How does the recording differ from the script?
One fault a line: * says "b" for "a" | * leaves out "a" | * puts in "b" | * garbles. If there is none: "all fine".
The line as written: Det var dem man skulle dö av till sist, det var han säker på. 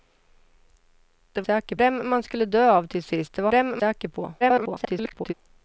* says "säker" for "var"
* says "dem" for "han"
* garbles